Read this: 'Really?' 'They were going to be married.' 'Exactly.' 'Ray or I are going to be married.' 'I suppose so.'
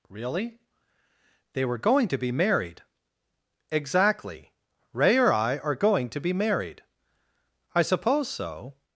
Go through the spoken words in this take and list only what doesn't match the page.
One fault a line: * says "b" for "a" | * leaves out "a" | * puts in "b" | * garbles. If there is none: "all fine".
all fine